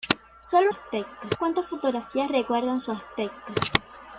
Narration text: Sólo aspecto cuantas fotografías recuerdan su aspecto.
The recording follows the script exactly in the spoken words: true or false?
true